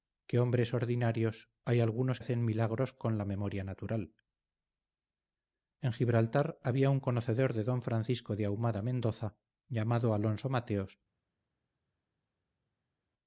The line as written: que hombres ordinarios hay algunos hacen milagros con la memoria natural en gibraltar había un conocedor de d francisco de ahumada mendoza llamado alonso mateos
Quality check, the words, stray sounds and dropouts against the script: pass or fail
pass